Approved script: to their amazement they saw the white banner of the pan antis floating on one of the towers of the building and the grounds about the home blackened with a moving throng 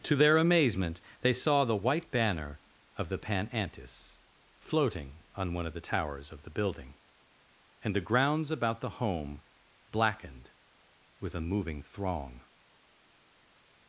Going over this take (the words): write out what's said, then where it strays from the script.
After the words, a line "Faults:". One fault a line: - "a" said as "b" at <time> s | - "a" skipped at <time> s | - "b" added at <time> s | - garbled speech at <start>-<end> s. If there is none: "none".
to their amazement they saw the white banner of the pan antis floating on one of the towers of the building and the grounds about the home blackened with a moving throng
Faults:
none